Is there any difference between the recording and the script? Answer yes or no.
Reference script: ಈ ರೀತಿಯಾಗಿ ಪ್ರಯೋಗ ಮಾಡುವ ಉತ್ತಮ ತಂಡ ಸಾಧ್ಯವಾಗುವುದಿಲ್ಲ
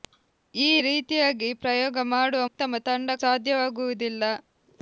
no